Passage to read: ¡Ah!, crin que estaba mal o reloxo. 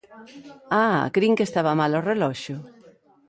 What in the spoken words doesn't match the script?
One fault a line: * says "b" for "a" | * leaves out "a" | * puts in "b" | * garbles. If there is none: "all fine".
all fine